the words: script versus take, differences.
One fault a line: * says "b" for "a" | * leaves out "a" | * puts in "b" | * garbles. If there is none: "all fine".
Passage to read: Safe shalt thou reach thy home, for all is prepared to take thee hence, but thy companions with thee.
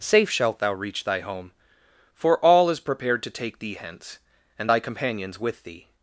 * says "and" for "but"